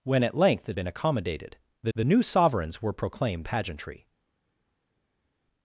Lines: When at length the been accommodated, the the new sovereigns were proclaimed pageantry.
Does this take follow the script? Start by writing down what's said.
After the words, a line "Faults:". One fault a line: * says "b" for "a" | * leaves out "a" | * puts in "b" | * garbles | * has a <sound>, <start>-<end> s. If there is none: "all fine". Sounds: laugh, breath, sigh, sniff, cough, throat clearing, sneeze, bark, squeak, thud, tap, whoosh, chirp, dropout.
When at length the been accommodated, the the new sovereigns were proclaimed pageantry.
Faults:
all fine